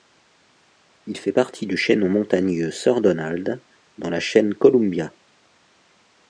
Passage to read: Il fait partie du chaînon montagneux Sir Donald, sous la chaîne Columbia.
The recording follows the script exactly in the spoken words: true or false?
false